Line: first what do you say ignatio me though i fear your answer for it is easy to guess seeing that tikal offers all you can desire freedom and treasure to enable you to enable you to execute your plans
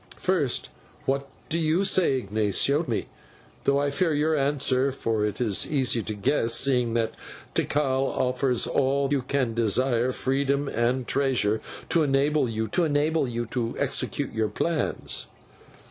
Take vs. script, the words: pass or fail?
pass